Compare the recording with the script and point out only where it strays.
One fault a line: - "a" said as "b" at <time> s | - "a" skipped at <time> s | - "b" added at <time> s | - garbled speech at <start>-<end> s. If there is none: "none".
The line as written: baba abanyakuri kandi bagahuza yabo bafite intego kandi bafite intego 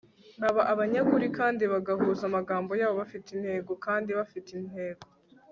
- "amagambo" added at 2.3 s